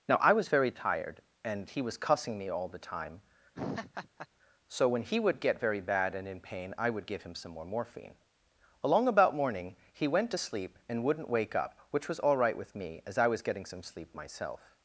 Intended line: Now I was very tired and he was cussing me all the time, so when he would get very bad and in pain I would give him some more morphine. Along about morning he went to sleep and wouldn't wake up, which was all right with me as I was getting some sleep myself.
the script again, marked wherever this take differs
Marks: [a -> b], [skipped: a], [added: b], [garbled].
Now I was very tired and he was cussing me all the time, so when he would get very bad and in pain I would give him some more morphine. Along about morning he went to sleep and wouldn't wake up, which was all right with me as I was getting some sleep myself.